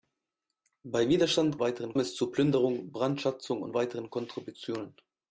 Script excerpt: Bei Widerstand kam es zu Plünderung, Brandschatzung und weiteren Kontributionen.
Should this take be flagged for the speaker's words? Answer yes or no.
yes